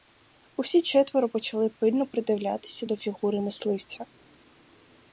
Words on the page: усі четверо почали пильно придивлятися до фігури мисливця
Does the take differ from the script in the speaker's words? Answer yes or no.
no